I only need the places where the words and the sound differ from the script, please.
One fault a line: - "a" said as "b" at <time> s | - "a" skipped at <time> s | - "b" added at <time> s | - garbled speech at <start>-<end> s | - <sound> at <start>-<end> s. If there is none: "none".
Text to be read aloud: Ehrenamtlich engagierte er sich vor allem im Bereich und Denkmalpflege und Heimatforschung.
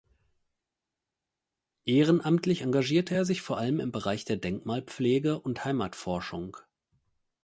- "und" said as "der" at 4.3 s